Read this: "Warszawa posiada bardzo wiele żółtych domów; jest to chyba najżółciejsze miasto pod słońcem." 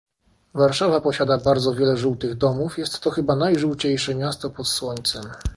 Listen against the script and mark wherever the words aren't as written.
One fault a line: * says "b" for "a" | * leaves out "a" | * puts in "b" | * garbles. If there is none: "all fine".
all fine